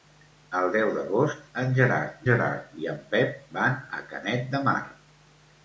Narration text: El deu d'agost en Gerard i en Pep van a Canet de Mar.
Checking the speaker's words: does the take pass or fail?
fail